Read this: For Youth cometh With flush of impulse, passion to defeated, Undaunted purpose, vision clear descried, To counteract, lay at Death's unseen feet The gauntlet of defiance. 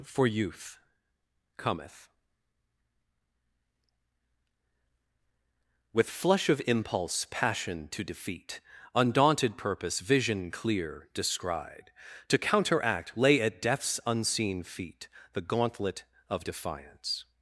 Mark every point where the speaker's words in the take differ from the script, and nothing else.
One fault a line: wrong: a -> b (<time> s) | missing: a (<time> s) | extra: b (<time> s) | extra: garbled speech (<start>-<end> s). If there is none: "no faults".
wrong: defeated -> defeat (8.0 s)